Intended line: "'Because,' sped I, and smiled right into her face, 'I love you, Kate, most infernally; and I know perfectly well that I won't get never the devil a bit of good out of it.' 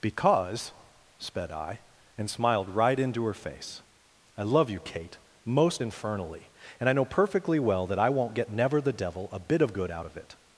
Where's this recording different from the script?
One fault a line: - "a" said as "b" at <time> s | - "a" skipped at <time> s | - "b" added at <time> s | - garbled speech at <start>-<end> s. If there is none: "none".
none